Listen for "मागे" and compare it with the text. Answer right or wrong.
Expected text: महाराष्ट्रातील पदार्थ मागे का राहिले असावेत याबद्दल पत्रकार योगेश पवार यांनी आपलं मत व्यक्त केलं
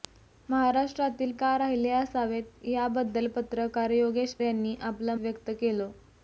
wrong